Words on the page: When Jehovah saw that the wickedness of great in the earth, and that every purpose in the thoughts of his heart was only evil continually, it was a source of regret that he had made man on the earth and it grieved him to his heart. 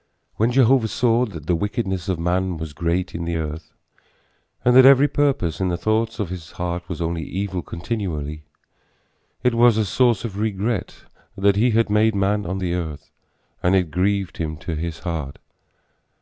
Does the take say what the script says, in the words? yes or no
no